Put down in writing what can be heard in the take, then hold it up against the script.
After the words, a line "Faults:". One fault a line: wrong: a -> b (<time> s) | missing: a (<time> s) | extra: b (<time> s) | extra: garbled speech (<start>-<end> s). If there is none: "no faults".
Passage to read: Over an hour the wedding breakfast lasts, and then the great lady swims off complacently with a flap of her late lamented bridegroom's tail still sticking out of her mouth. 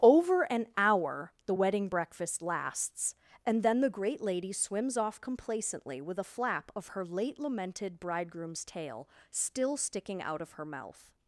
Over an hour the wedding breakfast lasts, and then the great lady swims off complacently with a flap of her late lamented bridegroom's tail still sticking out of her mouth.
Faults:
no faults